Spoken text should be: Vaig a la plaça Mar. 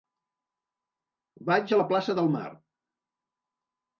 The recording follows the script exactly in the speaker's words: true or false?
false